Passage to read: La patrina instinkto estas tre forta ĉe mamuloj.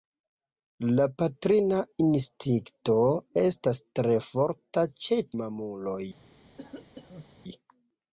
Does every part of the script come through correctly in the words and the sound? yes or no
no